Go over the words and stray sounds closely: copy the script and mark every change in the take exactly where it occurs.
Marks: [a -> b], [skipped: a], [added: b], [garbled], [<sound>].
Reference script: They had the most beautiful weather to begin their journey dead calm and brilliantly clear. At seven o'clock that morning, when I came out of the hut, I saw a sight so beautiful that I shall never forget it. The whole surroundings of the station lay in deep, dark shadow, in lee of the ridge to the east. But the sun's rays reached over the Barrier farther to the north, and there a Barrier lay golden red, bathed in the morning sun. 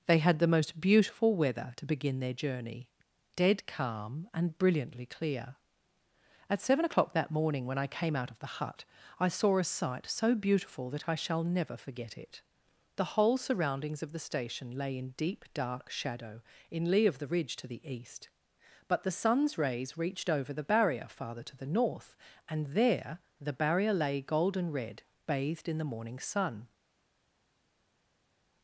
They had the most beautiful weather to begin their journey dead calm and brilliantly clear. At seven o'clock that morning, when I came out of the hut, I saw a sight so beautiful that I shall never forget it. The whole surroundings of the station lay in deep, dark shadow, in lee of the ridge to the east. But the sun's rays reached over the Barrier farther to the north, and there [a -> the] Barrier lay golden red, bathed in the morning sun.